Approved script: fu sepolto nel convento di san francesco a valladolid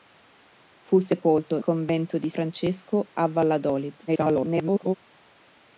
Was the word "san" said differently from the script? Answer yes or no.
yes